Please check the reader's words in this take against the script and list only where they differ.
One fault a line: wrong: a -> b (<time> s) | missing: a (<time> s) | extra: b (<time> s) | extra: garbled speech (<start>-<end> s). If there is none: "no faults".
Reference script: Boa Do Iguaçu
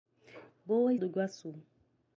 no faults